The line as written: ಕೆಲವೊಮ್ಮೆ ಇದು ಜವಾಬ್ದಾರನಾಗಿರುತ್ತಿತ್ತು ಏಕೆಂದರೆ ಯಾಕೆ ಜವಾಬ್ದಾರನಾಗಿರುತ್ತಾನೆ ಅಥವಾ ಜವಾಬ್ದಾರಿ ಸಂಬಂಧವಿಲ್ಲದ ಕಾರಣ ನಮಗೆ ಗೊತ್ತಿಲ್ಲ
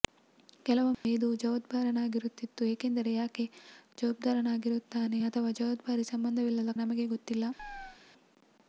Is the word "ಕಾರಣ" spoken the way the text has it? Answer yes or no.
no